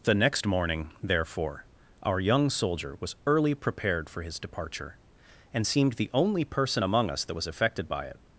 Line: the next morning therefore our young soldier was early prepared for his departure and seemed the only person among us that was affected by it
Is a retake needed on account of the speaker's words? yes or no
no